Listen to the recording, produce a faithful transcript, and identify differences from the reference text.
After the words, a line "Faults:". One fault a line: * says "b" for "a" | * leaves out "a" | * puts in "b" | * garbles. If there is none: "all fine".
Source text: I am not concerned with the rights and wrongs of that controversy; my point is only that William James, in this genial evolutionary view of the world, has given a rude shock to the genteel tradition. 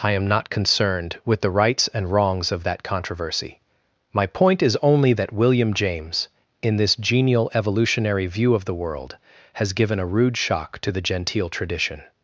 I am not concerned with the rights and wrongs of that controversy; my point is only that William James, in this genial evolutionary view of the world, has given a rude shock to the genteel tradition.
Faults:
all fine